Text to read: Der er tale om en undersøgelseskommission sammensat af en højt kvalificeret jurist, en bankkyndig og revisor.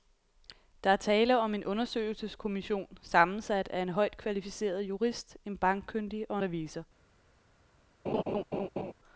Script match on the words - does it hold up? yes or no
yes